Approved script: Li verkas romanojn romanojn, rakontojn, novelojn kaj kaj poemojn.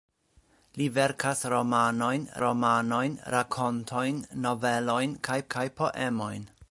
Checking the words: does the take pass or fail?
pass